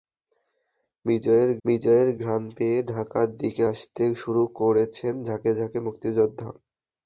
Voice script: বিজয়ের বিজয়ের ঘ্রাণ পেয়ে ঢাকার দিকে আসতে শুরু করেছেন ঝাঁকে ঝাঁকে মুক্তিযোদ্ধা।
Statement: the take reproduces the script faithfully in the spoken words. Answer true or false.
true